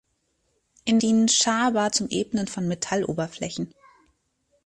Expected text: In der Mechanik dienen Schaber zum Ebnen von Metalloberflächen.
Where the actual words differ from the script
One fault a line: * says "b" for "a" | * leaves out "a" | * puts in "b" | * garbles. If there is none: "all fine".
* leaves out "der Mechanik"